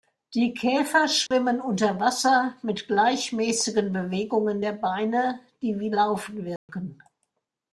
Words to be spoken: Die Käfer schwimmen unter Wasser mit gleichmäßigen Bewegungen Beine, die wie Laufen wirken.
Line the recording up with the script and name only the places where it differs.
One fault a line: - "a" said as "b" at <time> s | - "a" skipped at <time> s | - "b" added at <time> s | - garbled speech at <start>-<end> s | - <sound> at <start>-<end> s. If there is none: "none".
- dropout at 1.3-1.3 s
- "der" added at 4.6 s
- dropout at 6.6-6.7 s